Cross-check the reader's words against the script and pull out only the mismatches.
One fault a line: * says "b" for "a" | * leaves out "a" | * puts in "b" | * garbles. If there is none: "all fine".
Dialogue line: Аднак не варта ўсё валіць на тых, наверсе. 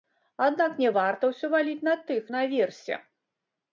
all fine